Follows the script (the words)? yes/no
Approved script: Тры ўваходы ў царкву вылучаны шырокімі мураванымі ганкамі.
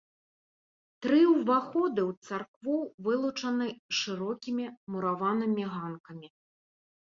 yes